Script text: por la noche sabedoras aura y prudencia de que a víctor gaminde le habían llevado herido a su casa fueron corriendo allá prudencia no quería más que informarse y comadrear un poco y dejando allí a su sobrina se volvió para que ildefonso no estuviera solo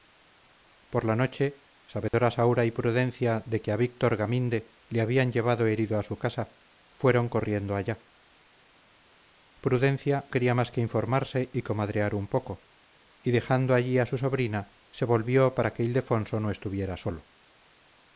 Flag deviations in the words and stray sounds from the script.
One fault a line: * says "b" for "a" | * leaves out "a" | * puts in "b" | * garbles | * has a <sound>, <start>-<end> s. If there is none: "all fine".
* has a dropout, 2.1-2.1 s
* leaves out "no"